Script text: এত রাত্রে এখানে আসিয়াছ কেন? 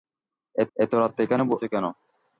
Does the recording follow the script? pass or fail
fail